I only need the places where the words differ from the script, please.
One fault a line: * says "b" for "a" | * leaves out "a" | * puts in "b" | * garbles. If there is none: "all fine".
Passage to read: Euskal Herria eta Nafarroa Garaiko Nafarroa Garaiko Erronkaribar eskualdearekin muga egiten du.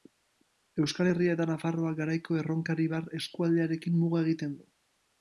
* leaves out "Nafarroa Garaiko"